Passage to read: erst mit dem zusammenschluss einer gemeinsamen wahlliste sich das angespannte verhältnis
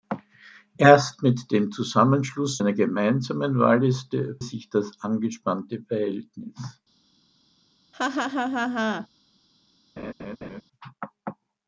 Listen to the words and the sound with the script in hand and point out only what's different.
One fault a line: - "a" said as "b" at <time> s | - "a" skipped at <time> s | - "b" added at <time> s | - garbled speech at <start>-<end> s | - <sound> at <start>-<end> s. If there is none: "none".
- laugh at 7.9-9.1 s
- laugh at 10.0-10.6 s